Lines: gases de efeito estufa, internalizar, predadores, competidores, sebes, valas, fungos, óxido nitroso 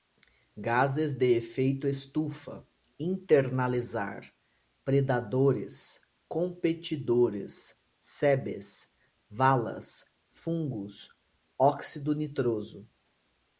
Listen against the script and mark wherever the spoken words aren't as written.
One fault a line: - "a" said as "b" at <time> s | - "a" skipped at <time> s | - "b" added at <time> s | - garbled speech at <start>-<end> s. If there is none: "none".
none